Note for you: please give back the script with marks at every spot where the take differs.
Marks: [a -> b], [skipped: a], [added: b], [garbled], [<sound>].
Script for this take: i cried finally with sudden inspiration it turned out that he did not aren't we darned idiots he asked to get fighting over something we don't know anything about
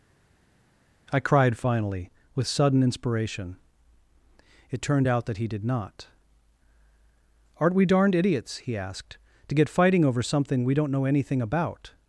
i cried finally with sudden inspiration it turned out that he did not aren't we darned idiots he asked to get fighting over something we don't know anything about